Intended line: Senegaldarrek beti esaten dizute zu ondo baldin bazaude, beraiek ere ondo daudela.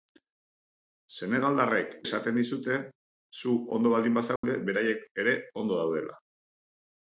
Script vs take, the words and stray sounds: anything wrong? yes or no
yes